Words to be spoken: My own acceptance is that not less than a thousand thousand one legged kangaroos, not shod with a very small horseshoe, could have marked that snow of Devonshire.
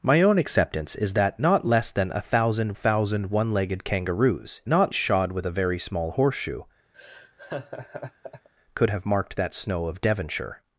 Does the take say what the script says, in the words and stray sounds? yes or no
no